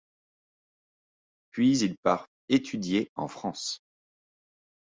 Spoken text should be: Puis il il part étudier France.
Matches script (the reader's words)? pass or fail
fail